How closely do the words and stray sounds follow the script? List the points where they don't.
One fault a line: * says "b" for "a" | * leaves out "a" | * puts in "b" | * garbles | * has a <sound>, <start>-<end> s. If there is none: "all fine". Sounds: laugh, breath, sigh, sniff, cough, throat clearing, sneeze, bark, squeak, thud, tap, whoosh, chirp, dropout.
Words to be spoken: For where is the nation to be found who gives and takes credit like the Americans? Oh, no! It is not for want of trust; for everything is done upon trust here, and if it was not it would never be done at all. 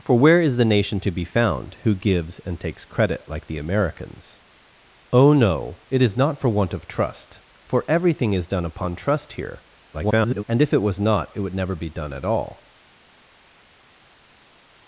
* garbles